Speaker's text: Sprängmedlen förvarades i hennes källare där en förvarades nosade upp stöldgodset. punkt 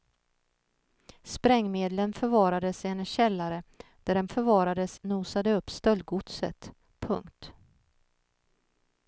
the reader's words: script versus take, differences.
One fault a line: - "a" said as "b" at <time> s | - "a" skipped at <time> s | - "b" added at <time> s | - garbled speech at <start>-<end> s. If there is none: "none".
none